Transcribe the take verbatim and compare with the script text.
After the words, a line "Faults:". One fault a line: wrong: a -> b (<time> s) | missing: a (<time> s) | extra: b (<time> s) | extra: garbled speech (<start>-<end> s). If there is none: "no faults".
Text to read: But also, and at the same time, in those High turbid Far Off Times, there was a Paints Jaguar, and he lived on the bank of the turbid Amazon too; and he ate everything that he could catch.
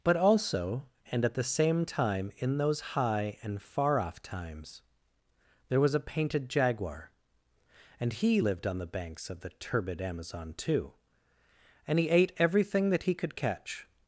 But also, and at the same time, in those High and Far Off Times, there was a Painted Jaguar, and he lived on the banks of the turbid Amazon too; and he ate everything that he could catch.
Faults:
wrong: turbid -> and (3.4 s)
wrong: Paints -> Painted (6.0 s)
wrong: bank -> banks (8.9 s)